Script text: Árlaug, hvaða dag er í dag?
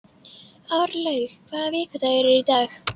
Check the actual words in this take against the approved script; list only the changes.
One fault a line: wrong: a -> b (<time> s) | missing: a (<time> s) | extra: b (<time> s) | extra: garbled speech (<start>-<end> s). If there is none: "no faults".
wrong: dag -> vikudagur (1.7 s)